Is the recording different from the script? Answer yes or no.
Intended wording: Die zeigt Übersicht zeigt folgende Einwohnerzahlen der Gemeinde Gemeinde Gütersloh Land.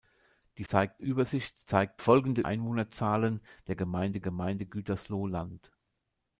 no